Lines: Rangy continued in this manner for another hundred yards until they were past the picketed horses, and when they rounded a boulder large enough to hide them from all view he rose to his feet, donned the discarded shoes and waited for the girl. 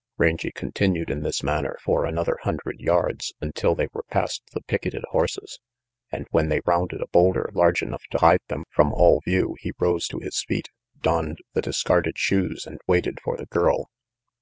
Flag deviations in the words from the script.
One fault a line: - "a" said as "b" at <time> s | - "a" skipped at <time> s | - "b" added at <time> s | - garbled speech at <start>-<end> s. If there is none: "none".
none